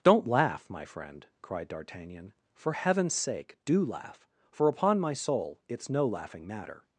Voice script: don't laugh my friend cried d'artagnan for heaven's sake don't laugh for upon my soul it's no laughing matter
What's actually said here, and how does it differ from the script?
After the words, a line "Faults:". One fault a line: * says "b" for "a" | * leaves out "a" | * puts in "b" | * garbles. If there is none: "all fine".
don't laugh my friend cried d'artagnan for heaven's sake do laugh for upon my soul it's no laughing matter
Faults:
* says "do" for "don't"